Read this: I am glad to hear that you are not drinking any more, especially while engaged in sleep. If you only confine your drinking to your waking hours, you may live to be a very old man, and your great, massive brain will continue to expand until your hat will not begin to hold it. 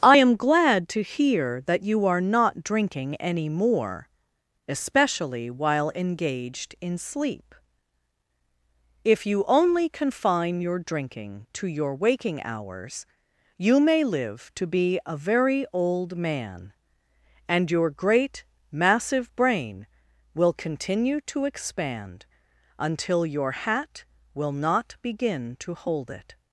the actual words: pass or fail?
pass